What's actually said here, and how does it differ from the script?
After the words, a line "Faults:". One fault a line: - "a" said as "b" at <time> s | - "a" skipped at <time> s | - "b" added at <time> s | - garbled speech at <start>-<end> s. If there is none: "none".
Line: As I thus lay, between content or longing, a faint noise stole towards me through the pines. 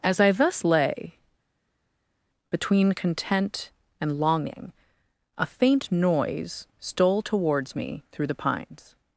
As I thus lay, between content and longing, a faint noise stole towards me through the pines.
Faults:
- "or" said as "and" at 4.0 s